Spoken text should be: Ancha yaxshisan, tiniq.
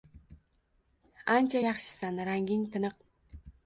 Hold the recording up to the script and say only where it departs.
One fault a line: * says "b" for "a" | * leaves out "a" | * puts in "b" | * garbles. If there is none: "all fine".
* puts in "ranging"